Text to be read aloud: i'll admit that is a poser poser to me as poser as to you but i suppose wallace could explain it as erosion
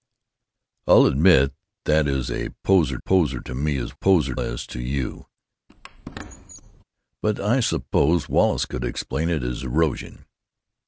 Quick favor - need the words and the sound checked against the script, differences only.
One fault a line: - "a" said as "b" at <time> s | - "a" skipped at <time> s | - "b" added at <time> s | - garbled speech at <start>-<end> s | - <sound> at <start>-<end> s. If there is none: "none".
- squeak at 5.7-6.8 s